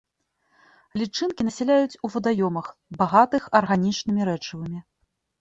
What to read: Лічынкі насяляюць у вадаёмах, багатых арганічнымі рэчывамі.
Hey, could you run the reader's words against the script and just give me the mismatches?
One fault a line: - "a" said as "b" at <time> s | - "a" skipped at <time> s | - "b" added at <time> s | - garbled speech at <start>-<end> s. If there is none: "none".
none